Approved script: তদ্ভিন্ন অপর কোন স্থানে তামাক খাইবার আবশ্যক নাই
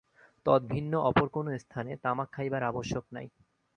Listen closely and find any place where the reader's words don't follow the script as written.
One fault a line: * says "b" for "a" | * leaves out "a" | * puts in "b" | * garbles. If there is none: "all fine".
all fine